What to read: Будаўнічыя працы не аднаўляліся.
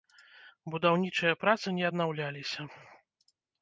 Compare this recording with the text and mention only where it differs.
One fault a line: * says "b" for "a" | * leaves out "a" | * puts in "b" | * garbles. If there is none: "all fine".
all fine